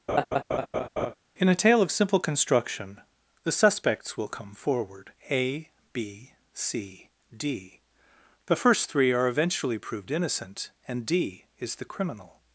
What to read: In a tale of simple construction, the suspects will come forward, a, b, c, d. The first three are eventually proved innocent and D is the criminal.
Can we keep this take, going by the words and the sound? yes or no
no